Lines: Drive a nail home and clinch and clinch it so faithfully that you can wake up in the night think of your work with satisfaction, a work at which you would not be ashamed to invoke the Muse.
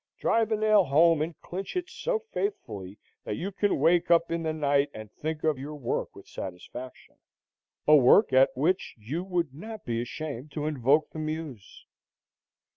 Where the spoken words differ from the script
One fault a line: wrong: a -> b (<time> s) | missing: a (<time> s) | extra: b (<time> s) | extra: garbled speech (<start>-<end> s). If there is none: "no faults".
missing: and clinch (1.8 s)
extra: and (5.0 s)